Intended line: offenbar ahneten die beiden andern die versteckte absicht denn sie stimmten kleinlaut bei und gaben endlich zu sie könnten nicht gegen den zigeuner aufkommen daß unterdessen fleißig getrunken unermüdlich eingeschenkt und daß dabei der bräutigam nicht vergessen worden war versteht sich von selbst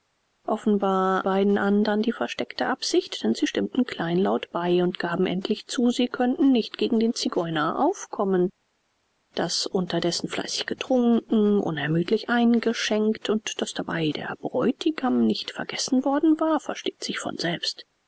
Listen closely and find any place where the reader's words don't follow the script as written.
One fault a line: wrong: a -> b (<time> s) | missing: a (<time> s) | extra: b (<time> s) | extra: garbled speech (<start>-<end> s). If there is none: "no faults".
missing: ahneten die (1.3 s)